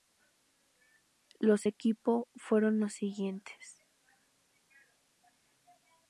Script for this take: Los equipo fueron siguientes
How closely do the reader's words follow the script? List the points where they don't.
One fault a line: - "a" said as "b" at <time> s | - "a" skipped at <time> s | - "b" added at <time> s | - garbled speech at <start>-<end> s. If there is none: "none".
- "los" added at 2.8 s